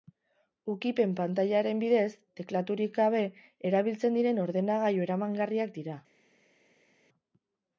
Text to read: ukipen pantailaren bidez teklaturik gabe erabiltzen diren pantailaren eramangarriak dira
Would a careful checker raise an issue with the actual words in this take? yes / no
yes